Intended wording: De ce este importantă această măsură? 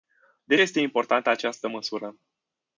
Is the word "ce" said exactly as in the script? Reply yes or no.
no